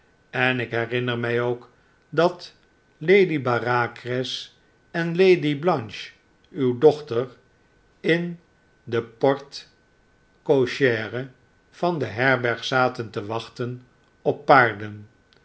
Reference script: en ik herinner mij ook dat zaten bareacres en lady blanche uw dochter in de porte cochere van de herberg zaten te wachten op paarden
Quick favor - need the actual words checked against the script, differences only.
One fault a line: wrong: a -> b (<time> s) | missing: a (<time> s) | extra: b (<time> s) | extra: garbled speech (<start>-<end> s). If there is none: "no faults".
wrong: zaten -> lady (3.0 s)